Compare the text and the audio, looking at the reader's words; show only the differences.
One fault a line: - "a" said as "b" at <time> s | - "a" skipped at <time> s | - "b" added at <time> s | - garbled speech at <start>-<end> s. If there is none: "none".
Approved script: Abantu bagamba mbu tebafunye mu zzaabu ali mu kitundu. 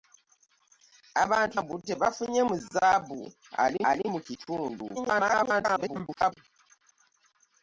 - "bagamba" skipped at 1.6 s
- "ali" added at 3.9 s
- garbled speech at 5.0-6.3 s